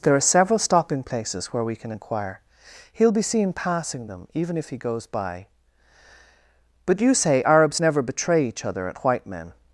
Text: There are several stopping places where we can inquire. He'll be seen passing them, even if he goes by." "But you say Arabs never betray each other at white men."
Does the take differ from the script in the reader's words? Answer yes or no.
no